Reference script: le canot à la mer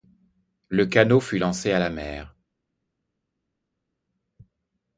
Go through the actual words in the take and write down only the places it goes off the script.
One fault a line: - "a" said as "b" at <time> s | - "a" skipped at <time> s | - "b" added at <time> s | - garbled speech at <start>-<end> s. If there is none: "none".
- "fut lancé" added at 1.2 s